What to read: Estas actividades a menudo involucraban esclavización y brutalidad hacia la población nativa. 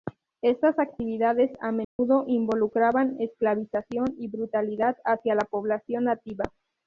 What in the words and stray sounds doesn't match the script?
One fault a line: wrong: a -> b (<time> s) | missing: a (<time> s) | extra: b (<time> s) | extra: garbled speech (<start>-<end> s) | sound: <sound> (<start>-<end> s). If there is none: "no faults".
sound: dropout (1.8-2.0 s)